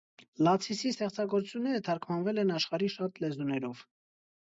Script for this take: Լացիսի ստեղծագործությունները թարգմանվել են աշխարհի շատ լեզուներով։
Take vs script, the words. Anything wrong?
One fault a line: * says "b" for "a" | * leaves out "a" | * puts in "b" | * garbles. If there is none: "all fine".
all fine